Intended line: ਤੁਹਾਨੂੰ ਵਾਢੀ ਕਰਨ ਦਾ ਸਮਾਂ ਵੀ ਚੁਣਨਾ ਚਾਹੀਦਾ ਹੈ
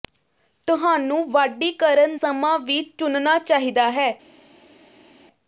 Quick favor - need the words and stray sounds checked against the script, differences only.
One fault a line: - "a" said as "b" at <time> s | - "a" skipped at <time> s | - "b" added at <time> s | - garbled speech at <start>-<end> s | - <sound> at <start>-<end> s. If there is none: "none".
- "ਦਾ" skipped at 2.2 s